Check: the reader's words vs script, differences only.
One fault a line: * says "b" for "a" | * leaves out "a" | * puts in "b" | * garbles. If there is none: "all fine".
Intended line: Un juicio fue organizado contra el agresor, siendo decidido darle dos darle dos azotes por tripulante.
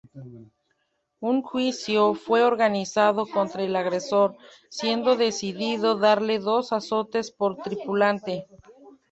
* leaves out "darle dos"